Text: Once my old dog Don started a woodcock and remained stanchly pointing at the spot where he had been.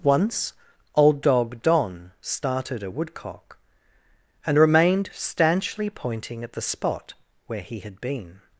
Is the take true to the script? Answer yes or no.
no